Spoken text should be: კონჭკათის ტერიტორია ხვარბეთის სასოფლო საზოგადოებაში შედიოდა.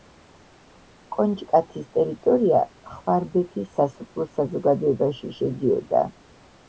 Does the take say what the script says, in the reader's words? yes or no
yes